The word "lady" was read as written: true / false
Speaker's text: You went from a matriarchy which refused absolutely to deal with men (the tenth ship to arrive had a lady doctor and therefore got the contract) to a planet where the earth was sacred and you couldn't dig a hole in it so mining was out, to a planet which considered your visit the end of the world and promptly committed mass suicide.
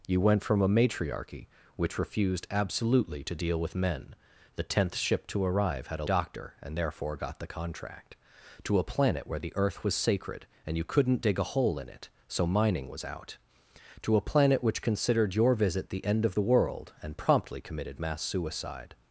false